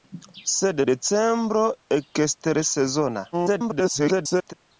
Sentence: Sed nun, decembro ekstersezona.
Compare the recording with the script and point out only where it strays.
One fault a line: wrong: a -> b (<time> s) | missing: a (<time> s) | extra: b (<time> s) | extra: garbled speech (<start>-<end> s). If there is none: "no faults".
missing: nun (0.8 s)
extra: garbled speech (3.3-4.5 s)